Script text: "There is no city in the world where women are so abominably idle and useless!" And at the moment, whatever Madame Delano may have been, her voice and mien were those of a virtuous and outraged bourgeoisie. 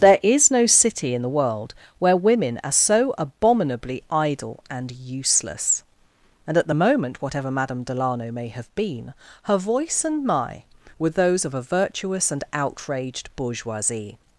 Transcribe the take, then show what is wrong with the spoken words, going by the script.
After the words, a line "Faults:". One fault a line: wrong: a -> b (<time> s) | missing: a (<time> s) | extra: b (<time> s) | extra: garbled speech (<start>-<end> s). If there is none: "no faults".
"There is no city in the world where women are so abominably idle and useless!" And at the moment, whatever Madame Delano may have been, her voice and my were those of a virtuous and outraged bourgeoisie.
Faults:
wrong: mien -> my (10.3 s)